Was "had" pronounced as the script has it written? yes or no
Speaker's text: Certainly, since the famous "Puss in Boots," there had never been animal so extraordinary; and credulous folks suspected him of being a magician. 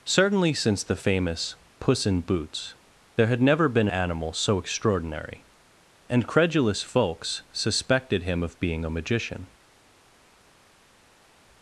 yes